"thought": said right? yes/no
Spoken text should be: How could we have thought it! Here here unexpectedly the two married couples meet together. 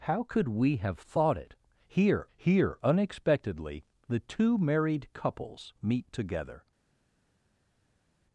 yes